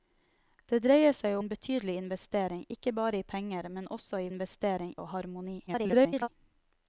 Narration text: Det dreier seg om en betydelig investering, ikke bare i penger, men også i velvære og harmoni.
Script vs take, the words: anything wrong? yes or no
yes